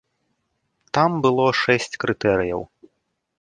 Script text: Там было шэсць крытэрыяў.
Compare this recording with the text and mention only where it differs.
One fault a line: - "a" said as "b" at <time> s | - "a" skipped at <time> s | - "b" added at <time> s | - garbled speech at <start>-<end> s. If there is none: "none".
none